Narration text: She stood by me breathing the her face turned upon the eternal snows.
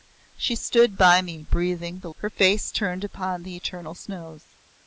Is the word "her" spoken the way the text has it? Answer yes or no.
yes